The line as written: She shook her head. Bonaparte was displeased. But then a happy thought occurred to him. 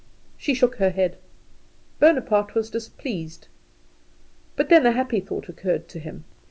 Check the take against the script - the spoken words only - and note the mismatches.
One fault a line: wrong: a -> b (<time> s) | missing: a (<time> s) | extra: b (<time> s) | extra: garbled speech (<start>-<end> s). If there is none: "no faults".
no faults